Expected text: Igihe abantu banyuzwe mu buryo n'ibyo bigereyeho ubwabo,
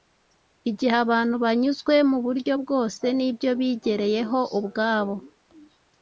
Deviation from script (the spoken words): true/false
true